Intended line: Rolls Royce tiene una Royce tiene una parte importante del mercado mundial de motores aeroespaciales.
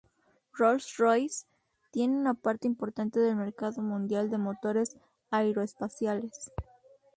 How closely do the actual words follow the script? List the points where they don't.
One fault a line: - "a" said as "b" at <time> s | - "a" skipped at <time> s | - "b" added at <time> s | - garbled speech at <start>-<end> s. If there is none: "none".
- "Royce tiene una" skipped at 2.3 s